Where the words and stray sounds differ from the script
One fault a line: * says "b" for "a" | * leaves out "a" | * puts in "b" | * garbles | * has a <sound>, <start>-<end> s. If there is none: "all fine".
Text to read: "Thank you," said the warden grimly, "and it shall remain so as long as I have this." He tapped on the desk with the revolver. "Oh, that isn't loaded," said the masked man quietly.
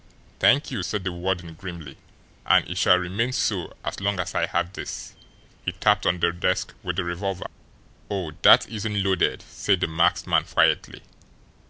all fine